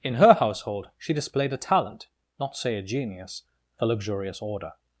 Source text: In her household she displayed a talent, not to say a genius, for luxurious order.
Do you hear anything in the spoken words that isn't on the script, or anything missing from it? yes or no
yes